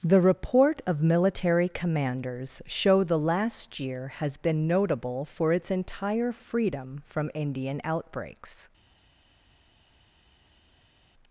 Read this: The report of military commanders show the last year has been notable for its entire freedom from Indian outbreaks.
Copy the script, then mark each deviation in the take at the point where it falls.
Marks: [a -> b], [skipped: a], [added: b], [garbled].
The report of military commanders show the last year has been notable for its entire freedom from Indian outbreaks.